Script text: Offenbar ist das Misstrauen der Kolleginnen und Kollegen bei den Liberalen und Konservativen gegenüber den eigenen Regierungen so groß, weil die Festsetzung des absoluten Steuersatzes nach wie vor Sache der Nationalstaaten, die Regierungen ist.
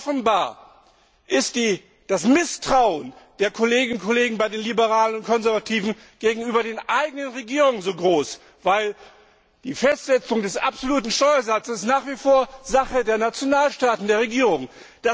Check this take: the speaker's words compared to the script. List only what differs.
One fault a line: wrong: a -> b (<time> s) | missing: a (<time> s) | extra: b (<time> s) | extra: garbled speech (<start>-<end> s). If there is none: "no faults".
wrong: die -> der (14.1 s)